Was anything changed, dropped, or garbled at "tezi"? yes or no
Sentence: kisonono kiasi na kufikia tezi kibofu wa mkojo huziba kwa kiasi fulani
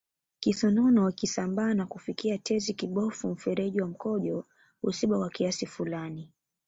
no